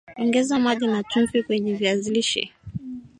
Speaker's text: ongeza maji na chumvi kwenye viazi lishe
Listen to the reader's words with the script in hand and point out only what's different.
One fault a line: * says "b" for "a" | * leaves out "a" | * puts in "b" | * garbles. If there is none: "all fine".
all fine